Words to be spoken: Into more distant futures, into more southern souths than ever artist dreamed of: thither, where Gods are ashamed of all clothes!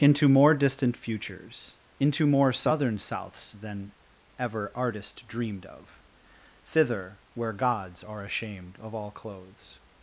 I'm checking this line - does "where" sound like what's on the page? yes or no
yes